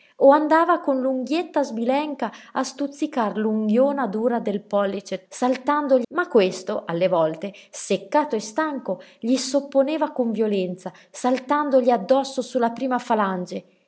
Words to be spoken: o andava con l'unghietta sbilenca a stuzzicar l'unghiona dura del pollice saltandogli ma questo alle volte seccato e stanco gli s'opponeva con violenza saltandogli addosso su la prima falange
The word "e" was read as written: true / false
true